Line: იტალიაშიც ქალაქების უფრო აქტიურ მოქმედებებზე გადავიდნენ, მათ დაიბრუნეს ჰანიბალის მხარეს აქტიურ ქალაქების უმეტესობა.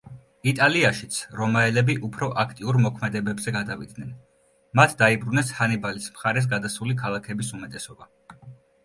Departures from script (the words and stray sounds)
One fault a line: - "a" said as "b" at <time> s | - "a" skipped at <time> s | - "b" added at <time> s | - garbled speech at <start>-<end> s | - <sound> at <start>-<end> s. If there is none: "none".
- "ქალაქების" said as "რომაელები" at 1.4 s
- "აქტიურ" said as "გადასული" at 6.5 s